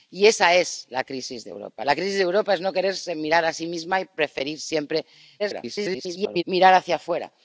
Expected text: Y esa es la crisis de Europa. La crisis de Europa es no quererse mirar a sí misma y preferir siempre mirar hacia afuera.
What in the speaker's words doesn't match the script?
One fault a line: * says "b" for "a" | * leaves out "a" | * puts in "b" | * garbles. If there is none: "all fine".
* garbles